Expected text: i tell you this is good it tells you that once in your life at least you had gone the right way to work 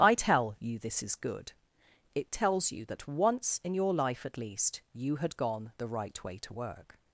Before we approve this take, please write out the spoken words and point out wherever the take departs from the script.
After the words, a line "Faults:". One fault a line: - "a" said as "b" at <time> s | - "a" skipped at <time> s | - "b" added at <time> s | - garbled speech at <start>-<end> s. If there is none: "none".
i tell you this is good it tells you that once in your life at least you had gone the right way to work
Faults:
none